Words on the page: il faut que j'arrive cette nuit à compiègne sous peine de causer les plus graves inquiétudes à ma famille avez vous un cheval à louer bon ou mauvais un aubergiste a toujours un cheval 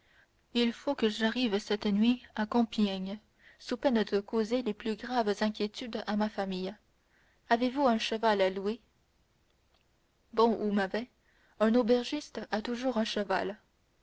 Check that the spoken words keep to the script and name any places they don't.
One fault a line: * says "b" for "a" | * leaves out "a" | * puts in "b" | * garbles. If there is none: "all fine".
all fine